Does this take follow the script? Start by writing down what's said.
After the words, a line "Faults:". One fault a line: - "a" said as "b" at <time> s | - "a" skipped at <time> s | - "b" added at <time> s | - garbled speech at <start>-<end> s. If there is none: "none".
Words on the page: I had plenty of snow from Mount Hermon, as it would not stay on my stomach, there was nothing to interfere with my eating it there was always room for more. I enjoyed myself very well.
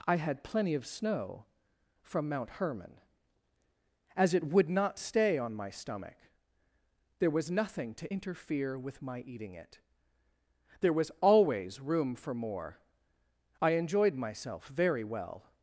I had plenty of snow from Mount Hermon, as it would not stay on my stomach, there was nothing to interfere with my eating it there was always room for more. I enjoyed myself very well.
Faults:
none